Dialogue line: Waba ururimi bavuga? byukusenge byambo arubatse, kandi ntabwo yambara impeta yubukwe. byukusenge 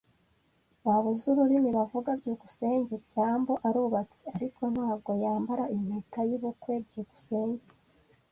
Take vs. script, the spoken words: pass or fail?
fail